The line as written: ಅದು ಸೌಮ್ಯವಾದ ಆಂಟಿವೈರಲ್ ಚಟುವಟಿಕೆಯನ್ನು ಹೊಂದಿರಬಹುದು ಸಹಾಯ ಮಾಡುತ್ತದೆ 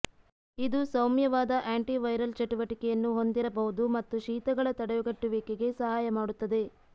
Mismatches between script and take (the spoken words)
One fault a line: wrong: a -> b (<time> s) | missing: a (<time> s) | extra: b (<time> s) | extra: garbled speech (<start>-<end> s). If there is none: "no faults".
wrong: ಅದು -> ಇದು (0.6 s)
extra: ಮತ್ತು ಶೀತಗಳ ತಡೆಗಟ್ಟುವಿಕೆಗೆ (4.0 s)